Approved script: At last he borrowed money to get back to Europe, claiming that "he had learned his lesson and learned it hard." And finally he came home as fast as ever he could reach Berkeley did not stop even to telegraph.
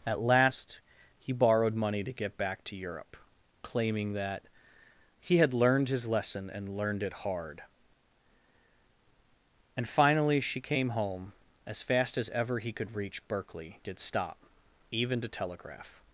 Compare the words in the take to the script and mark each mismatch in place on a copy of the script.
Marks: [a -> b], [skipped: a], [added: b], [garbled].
At last he borrowed money to get back to Europe, claiming that "he had learned his lesson and learned it hard." And finally [he -> she] came home as fast as ever he could reach Berkeley did [skipped: not] stop even to telegraph.